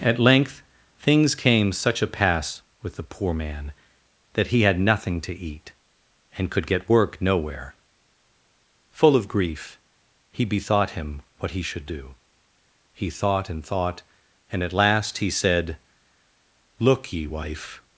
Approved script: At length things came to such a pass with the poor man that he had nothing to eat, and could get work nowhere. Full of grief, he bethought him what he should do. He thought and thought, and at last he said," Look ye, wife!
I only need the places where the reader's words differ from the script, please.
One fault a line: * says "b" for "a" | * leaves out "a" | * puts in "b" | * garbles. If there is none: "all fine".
* leaves out "to"